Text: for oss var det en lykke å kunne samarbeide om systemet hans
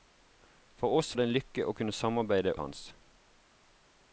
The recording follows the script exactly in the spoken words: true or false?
false